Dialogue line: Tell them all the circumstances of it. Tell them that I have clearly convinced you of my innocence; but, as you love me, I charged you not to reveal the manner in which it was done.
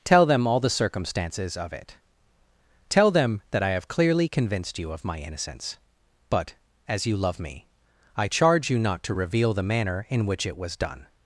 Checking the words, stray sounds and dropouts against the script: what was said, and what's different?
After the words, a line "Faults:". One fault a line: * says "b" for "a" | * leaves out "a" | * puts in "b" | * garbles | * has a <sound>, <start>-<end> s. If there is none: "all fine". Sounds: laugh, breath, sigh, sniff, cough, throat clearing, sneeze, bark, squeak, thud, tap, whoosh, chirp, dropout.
Tell them all the circumstances of it. Tell them that I have clearly convinced you of my innocence; but, as you love me, I charge you not to reveal the manner in which it was done.
Faults:
* says "charge" for "charged"